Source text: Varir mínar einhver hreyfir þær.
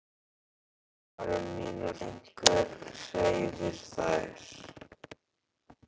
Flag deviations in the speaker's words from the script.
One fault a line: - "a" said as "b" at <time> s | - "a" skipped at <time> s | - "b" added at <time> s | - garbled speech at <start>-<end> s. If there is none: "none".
none